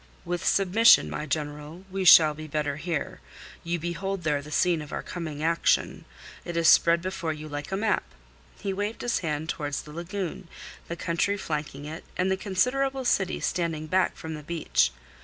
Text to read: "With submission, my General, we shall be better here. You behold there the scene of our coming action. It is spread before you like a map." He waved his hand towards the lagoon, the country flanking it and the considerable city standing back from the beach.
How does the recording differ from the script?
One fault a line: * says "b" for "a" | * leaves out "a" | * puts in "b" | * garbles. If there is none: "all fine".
all fine